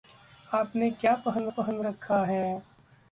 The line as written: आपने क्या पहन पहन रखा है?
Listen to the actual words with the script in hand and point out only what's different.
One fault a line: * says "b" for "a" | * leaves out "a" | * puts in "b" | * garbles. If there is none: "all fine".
all fine